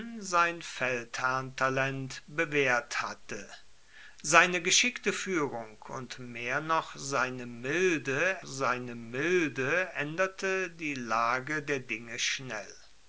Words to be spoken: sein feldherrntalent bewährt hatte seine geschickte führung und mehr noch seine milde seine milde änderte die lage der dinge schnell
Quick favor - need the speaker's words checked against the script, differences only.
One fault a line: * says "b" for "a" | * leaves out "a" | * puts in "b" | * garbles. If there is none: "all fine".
all fine